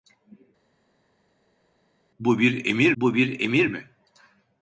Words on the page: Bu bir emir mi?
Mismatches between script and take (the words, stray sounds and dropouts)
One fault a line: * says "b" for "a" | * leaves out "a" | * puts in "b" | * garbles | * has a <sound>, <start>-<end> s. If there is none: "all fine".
* puts in "bu bir emir"